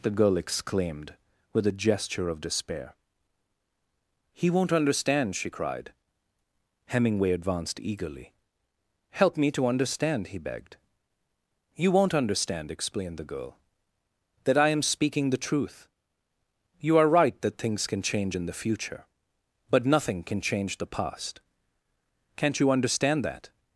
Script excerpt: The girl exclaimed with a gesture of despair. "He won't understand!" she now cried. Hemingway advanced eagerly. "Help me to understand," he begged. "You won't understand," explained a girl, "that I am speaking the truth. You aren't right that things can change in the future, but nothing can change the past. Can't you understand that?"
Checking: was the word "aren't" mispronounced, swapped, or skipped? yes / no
yes